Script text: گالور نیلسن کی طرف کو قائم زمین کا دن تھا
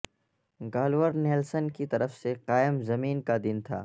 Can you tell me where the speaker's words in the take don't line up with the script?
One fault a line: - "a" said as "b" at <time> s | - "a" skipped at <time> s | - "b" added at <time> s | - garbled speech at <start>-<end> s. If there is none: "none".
- "کو" said as "سے" at 2.2 s